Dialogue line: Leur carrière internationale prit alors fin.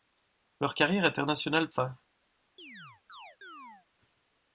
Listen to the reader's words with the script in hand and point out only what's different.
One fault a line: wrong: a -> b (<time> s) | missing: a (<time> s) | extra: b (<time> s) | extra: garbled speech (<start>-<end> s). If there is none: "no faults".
missing: prit alors (1.7 s)